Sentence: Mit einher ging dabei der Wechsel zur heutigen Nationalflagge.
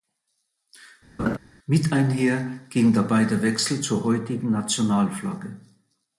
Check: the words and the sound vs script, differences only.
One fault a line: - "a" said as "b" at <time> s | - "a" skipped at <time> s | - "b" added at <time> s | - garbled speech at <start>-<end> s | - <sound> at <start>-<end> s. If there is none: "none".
- laugh at 1.2-1.4 s